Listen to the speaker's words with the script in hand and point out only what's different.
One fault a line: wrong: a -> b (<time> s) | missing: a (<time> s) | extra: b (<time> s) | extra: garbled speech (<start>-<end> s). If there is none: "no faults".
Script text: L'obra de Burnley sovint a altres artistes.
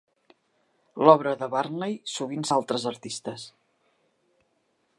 no faults